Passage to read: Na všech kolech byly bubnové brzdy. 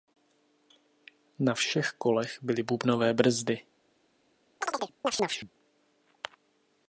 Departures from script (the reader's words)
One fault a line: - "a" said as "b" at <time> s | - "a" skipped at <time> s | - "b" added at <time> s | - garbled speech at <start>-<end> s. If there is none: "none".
none